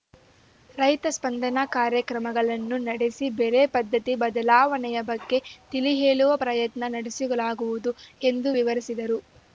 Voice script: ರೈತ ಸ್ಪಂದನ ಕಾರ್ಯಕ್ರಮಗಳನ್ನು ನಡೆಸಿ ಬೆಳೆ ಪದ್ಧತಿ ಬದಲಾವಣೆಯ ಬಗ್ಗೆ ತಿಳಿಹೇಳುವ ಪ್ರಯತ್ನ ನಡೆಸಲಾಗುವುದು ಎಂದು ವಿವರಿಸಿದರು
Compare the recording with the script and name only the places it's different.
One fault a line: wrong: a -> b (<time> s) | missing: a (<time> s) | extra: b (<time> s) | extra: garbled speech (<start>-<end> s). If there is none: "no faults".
no faults